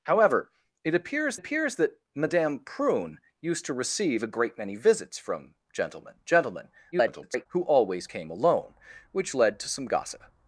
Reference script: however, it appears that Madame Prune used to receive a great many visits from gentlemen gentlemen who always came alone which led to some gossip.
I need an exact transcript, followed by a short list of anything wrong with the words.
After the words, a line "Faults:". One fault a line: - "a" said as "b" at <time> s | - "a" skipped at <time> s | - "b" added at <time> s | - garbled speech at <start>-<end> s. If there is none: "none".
however, it appears appears that Madame Prune used to receive a great many visits from gentlemen gentlemen [garbled] who always came alone which led to some gossip.
Faults:
- "appears" added at 1.3 s
- garbled speech at 6.9-7.5 s